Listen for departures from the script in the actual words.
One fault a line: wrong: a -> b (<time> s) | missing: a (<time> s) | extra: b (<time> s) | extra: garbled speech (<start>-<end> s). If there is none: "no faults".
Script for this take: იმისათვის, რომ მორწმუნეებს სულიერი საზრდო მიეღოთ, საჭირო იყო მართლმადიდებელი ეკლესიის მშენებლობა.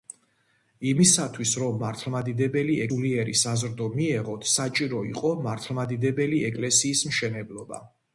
wrong: მორწმუნეებს -> მართლმადიდებელი (1.9 s)